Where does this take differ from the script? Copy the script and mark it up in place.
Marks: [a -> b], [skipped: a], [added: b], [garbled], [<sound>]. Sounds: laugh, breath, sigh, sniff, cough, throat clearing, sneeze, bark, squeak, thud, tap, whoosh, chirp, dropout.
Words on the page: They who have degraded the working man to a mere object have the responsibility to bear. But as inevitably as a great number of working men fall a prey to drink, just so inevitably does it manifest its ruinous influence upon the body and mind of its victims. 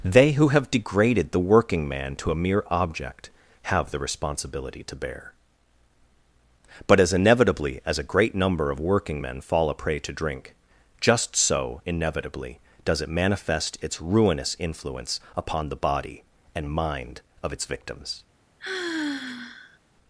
They who have degraded the working man to a mere object have the responsibility to bear. But as inevitably as a great number of working men fall a prey to drink, just so inevitably does it manifest its ruinous influence upon the body and mind of its victims. [sigh]